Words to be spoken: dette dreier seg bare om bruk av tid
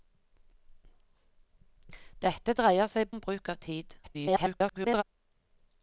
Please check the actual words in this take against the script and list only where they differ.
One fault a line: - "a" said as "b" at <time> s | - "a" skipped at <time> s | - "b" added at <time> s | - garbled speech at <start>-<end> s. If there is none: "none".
- "bare" skipped at 3.1 s
- garbled speech at 4.0-5.0 s